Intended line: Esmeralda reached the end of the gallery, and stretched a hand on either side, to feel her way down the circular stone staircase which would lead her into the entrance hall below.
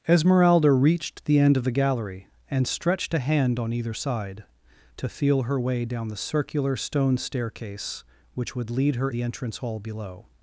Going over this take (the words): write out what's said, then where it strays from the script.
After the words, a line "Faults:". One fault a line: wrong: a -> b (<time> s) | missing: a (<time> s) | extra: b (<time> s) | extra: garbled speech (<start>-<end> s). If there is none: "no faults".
Esmeralda reached the end of the gallery, and stretched a hand on either side, to feel her way down the circular stone staircase which would lead her the entrance hall below.
Faults:
missing: into (9.1 s)